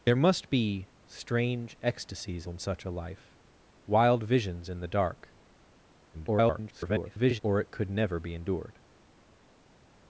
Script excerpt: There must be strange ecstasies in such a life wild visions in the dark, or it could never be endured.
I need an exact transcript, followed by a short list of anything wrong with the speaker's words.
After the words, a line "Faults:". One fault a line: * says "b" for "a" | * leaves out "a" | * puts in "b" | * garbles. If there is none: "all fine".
There must be strange ecstasies in such a life wild visions in the dark, [garbled] or it could never be endured.
Faults:
* garbles